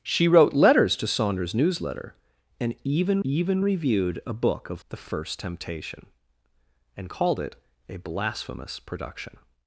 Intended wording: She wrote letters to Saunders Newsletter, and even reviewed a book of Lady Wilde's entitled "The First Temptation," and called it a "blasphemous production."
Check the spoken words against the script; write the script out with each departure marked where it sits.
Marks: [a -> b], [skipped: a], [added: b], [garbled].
She wrote letters to Saunders Newsletter, and even [added: even] reviewed a book of [skipped: Lady Wilde's entitled] "The First Temptation," and called it a "blasphemous production."